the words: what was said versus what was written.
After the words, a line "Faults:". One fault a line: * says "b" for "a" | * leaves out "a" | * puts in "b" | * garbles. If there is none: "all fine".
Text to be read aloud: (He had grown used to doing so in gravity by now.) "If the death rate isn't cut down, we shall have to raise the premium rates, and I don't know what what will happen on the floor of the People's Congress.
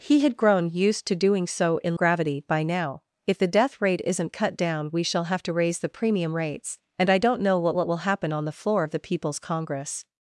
(He had grown used to doing so in gravity by now.) "If the death rate isn't cut down, we shall have to raise the premium rates, and I don't know what what will happen on the floor of the People's Congress.
Faults:
all fine